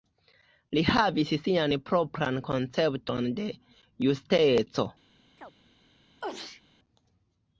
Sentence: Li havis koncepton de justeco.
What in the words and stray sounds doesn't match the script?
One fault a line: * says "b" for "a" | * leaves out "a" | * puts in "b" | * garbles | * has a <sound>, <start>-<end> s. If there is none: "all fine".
* puts in "sian propran"
* has a chirp, 5.4-5.5 s
* has a sneeze, 6.2-6.6 s